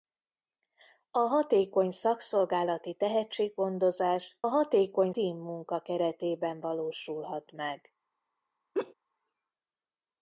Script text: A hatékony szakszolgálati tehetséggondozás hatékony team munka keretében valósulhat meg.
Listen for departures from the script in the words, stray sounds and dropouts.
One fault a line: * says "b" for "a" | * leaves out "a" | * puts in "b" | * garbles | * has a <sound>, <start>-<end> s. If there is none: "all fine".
* has a laugh, 8.7-8.9 s